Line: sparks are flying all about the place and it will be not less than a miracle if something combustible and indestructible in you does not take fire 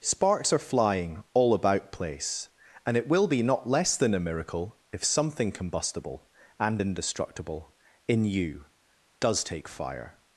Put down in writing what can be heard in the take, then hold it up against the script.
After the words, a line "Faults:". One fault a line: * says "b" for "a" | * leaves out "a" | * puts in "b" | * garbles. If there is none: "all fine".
sparks are flying all about place and it will be not less than a miracle if something combustible and indestructible in you does take fire
Faults:
* leaves out "the"
* leaves out "not"